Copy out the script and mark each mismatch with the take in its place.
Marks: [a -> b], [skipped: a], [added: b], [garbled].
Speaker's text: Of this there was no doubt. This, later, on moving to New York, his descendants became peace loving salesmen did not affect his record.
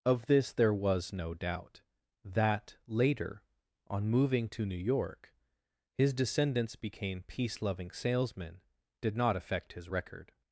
Of this there was no doubt. [This, -> That] later, on moving to New York, his descendants became peace loving salesmen did not affect his record.